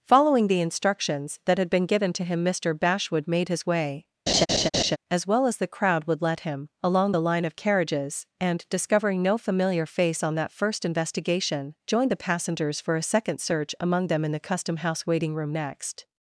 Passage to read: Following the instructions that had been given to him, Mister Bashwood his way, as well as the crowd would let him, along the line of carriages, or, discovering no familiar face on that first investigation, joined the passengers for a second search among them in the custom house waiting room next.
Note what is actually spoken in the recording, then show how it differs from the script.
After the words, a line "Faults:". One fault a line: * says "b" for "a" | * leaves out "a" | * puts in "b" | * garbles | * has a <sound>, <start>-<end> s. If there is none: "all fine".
Following the instructions that had been given to him, Mister Bashwood made his way, as well as the crowd would let him, along the line of carriages, and, discovering no familiar face on that first investigation, joined the passengers for a second search among them in the custom house waiting room next.
Faults:
* puts in "made"
* has a laugh, 4.3-5.0 s
* says "and" for "or"